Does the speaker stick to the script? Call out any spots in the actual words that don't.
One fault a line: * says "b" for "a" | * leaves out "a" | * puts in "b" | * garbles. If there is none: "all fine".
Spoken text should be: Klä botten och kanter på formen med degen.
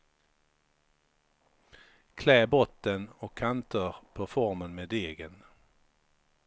all fine